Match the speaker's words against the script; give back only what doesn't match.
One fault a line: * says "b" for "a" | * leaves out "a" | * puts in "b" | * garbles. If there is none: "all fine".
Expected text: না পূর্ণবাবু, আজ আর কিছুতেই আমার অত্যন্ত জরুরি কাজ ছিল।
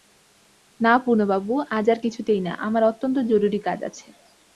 * puts in "না"
* says "আছে" for "ছিল"